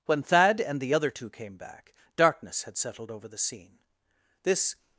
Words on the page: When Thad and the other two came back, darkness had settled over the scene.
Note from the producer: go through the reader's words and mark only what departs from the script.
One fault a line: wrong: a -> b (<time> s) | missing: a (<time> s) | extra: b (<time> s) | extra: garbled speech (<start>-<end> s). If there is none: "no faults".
extra: This (4.4 s)